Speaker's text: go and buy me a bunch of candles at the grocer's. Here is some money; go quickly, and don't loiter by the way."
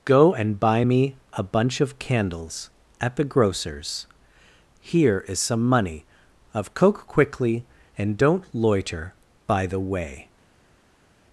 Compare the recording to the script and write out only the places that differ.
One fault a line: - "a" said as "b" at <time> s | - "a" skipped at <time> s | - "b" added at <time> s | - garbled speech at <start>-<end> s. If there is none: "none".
- "go" said as "of coke" at 6.5 s